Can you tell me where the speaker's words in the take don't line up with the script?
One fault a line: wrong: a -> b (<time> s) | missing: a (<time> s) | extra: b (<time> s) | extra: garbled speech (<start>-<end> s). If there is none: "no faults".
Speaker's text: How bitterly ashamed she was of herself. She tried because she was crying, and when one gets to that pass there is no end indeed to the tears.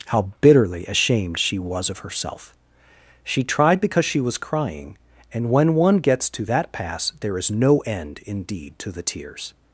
no faults